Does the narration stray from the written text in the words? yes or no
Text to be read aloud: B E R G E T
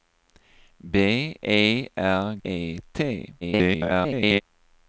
yes